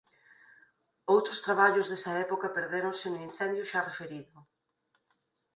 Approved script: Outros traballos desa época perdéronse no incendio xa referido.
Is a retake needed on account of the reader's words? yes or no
no